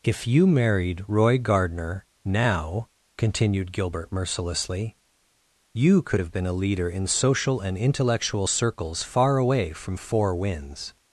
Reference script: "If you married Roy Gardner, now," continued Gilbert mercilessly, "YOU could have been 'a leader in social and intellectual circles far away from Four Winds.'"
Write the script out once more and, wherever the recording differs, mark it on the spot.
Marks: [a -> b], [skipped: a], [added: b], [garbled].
"If you married Roy Gardner, now," continued Gilbert mercilessly, "YOU could have been 'a leader in social and intellectual circles far away from Four Winds.'"